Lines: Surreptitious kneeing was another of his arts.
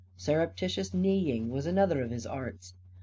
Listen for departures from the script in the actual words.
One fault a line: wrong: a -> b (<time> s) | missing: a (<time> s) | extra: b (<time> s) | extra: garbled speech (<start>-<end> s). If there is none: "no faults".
no faults